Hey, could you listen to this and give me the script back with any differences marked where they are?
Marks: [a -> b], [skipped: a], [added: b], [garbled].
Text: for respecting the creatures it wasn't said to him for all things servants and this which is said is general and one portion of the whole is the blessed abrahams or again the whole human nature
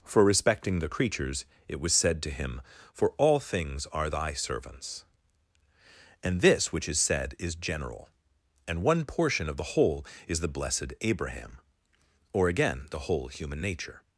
for respecting the creatures it [wasn't -> was] said to him for all things [added: are thy] servants and this which is said is general and one portion of the whole is the blessed [abrahams -> abraham] or again the whole human nature